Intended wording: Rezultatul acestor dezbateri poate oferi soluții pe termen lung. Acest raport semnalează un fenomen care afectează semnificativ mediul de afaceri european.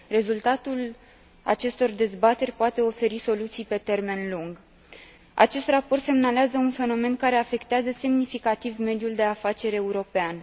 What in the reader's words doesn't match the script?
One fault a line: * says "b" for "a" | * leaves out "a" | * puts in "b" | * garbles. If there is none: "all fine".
all fine